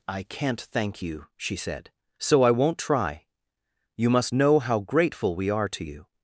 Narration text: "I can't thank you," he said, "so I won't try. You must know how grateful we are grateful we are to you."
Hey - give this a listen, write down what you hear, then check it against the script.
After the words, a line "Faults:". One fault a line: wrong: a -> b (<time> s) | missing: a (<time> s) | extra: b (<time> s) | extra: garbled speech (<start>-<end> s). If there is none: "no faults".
"I can't thank you," she said, "so I won't try. You must know how grateful we are to you."
Faults:
wrong: he -> she (1.4 s)
missing: grateful we are (5.7 s)